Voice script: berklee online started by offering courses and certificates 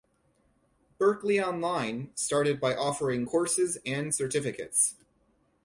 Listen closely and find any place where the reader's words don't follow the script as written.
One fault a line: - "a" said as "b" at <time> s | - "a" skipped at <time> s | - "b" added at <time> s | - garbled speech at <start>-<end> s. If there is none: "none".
none